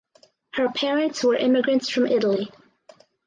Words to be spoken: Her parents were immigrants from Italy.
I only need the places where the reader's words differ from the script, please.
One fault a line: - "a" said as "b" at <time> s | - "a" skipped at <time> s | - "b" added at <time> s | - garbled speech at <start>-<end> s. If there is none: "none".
none